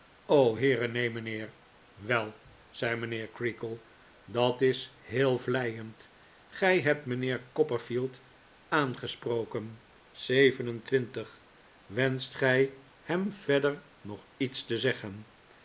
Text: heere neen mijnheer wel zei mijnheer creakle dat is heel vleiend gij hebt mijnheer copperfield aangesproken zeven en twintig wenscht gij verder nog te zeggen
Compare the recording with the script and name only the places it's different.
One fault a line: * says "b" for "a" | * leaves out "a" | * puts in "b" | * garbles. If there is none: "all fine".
* puts in "hem"
* puts in "iets"